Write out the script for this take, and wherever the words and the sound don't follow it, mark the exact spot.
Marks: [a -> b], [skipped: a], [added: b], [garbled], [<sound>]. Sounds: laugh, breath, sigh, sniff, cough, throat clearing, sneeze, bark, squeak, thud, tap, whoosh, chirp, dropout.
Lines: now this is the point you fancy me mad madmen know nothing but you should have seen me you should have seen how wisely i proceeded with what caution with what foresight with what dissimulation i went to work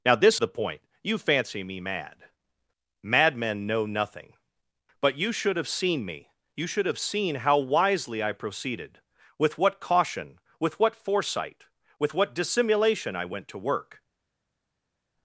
now this [skipped: is] the point you fancy me mad madmen know nothing but you should have seen me you should have seen how wisely i proceeded with what caution with what foresight with what dissimulation i went to work